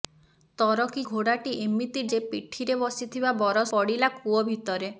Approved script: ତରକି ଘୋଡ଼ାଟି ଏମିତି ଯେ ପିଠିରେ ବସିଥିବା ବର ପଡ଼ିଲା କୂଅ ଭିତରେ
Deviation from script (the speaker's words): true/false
false